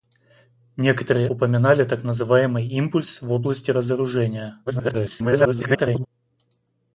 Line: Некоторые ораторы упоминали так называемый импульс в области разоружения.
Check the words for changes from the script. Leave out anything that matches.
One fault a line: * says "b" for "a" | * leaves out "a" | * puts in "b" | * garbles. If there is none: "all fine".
* leaves out "ораторы"
* garbles